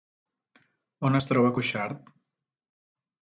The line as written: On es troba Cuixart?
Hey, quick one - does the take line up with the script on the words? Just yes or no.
yes